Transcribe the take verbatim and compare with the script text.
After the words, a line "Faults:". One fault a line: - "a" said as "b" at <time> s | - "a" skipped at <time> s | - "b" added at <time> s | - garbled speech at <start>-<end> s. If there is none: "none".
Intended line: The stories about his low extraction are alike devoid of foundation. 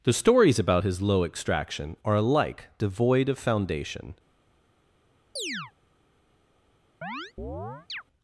The stories about his low extraction are alike devoid of foundation.
Faults:
none